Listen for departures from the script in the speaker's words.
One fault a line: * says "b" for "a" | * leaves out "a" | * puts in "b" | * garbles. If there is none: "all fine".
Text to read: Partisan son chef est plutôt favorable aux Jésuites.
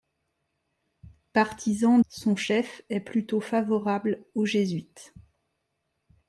all fine